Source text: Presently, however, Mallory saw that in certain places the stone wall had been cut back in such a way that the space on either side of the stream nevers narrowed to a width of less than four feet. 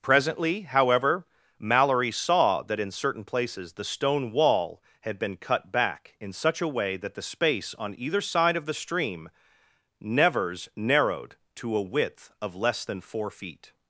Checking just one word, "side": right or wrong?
right